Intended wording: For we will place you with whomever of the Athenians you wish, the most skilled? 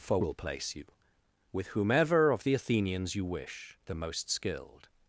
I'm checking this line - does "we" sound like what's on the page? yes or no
no